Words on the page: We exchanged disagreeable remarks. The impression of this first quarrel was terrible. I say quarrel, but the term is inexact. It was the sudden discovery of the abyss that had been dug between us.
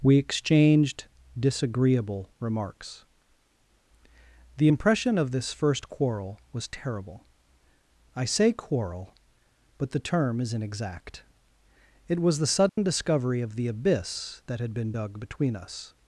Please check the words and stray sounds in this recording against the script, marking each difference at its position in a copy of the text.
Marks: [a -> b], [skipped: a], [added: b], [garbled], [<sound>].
We exchanged disagreeable remarks. The impression of this first quarrel was terrible. I say quarrel, but the term is inexact. It was the sudden [dropout] discovery of the abyss that had been dug between us.